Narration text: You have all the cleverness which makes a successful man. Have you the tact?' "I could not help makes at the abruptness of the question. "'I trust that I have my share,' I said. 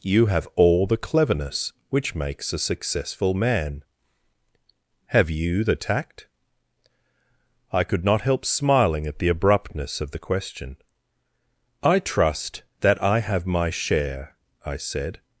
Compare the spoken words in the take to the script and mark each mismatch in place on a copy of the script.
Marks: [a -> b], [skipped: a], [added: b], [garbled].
You have all the cleverness which makes a successful man. Have you the tact?' "I could not help [makes -> smiling] at the abruptness of the question. "'I trust that I have my share,' I said.